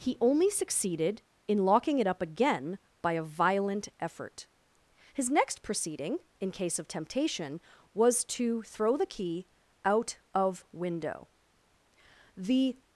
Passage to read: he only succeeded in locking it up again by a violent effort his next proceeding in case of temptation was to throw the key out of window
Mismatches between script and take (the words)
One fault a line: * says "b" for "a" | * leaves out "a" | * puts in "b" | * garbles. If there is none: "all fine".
* puts in "the"